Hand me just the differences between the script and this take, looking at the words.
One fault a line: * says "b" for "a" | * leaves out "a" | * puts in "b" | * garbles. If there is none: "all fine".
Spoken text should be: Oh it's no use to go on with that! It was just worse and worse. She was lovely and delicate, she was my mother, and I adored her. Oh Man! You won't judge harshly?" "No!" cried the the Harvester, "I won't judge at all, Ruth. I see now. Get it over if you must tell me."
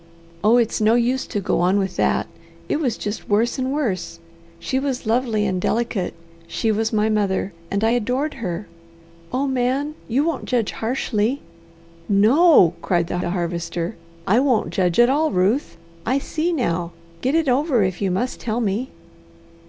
all fine